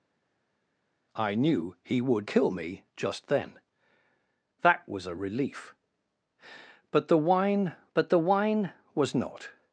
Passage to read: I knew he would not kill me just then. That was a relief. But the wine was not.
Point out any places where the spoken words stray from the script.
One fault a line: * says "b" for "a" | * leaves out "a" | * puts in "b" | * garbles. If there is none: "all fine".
* leaves out "not"
* puts in "but the wine"